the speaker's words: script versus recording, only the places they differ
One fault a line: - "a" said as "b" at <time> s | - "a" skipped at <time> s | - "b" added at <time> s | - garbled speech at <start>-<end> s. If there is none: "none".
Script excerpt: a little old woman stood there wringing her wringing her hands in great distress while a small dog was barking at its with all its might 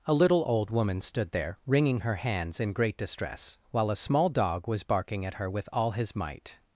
- "wringing her" skipped at 2.1 s
- "its" said as "her" at 5.3 s
- "its" said as "his" at 5.9 s